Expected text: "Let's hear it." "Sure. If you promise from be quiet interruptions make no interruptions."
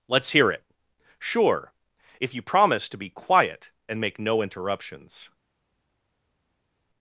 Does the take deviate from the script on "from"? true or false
true